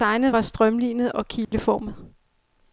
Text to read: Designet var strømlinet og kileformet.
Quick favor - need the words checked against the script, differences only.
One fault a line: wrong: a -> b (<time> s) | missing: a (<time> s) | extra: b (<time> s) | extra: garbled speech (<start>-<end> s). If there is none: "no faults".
no faults